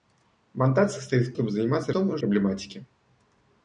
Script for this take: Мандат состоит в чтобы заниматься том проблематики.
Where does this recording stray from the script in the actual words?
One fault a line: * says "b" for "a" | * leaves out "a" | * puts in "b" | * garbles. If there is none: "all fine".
all fine